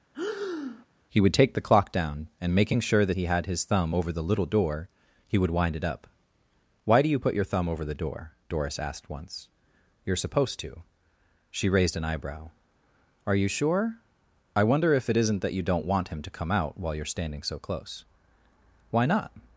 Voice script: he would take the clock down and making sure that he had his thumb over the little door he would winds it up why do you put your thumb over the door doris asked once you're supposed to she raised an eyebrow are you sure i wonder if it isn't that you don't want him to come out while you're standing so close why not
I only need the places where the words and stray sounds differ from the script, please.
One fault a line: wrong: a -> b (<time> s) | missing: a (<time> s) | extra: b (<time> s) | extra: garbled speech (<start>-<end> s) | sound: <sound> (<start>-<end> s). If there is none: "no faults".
sound: breath (0.1-0.9 s)
wrong: winds -> wind (5.5 s)